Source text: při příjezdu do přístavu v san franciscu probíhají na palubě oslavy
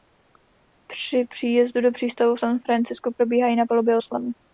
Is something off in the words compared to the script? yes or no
no